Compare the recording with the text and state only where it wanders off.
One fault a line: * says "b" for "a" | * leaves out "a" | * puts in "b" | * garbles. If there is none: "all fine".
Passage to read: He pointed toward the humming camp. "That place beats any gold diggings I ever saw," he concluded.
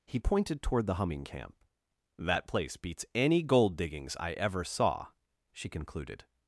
* says "she" for "he"